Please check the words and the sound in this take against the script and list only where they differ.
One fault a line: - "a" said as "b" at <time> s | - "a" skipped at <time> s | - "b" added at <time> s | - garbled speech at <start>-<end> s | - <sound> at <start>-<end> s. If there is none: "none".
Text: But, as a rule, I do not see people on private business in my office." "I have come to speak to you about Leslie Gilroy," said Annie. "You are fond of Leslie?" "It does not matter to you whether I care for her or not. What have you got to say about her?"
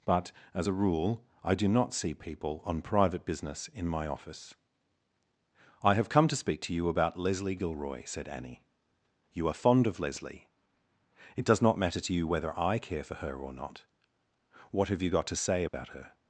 - dropout at 15.7-15.7 s